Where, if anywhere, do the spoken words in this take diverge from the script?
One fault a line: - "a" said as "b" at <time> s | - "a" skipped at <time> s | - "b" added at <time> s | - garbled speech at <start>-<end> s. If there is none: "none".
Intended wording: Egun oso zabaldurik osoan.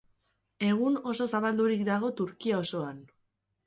- "dago Turkia" added at 1.9 s